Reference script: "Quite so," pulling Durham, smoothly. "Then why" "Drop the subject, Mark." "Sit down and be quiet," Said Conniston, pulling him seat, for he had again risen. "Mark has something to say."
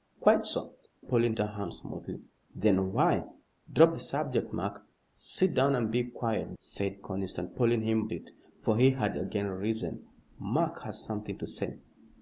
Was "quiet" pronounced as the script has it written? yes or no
yes